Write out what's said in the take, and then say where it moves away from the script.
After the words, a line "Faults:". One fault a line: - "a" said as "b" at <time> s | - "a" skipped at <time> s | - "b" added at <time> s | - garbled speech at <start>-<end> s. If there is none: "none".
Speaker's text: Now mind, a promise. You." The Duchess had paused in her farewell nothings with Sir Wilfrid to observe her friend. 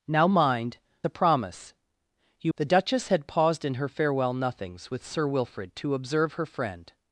Now mind, a promise. You." The Duchess had paused in her farewell nothings with Sir Wilfrid to observe her friend.
Faults:
none